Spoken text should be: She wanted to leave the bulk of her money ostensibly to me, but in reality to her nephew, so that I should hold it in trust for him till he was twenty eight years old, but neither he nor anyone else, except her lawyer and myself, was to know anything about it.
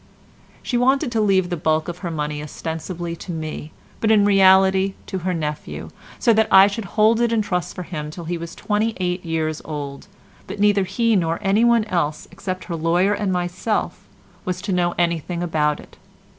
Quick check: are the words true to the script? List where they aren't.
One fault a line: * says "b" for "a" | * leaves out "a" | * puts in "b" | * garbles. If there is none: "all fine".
all fine